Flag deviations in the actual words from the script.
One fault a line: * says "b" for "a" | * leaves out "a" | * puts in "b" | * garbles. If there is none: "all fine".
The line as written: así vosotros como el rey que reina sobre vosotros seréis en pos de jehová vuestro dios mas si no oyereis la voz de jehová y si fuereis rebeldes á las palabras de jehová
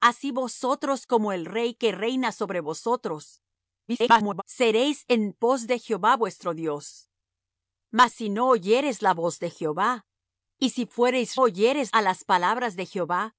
* garbles
* says "oyereis" for "rebeldes"